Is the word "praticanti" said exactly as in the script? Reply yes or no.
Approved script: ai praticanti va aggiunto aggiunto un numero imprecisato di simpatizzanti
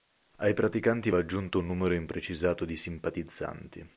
yes